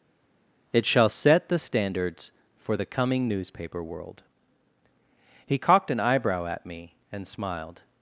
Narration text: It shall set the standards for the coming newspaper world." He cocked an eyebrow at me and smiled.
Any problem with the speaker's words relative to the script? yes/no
no